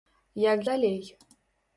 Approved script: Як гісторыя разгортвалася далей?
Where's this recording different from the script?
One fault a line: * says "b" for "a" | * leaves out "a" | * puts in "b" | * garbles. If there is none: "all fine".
* leaves out "гісторыя разгортвалася"